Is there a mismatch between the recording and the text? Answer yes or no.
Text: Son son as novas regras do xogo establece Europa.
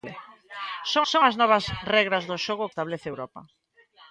no